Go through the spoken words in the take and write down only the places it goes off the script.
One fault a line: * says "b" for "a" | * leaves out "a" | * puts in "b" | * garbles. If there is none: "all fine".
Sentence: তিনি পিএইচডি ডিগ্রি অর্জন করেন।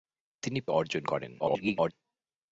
* leaves out "পিএইচডি ডিগ্রি"
* garbles